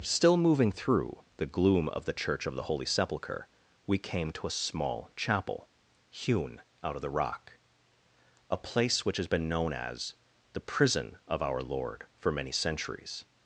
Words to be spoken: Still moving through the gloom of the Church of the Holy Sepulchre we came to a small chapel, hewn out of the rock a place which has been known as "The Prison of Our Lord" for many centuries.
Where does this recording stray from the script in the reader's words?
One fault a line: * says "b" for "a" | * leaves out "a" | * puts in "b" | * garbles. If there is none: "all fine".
all fine